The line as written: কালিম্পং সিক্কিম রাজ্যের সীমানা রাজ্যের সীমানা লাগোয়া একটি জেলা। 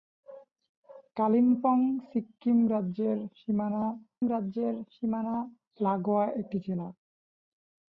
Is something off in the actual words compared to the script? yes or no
no